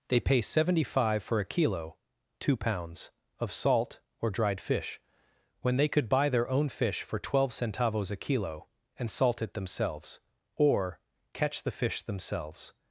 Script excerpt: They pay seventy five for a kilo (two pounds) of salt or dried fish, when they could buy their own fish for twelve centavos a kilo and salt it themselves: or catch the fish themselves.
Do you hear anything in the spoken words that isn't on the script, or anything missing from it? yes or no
no